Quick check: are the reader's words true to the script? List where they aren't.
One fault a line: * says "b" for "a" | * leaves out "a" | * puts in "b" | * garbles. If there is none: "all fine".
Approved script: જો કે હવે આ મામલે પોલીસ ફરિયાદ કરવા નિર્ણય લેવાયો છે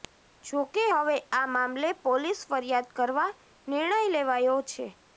all fine